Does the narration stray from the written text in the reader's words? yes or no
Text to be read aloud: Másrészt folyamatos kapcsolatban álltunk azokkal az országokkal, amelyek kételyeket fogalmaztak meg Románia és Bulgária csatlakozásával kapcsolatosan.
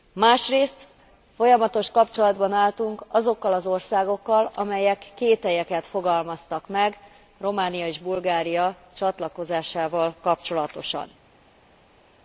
no